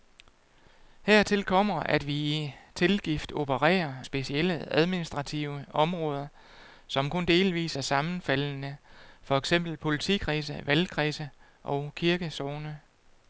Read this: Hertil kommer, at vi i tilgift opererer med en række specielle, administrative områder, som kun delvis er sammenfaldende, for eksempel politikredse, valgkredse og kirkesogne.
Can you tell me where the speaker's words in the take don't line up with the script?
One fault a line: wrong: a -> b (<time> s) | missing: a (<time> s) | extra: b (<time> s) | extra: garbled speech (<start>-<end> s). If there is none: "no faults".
missing: med en række (3.9 s)